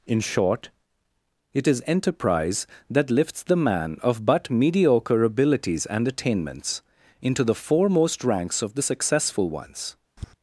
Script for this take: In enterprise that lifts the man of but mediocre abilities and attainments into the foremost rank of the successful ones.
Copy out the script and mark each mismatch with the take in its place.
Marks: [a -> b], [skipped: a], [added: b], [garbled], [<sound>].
In [added: short it is] enterprise that lifts the man of but mediocre abilities and attainments into the foremost [rank -> ranks] of the successful ones. [tap]